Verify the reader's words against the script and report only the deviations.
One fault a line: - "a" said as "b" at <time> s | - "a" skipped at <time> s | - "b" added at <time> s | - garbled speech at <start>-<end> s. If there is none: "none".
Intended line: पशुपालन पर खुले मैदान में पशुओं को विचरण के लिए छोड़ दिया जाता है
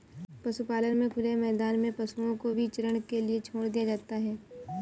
- "पर" said as "में" at 1.0 s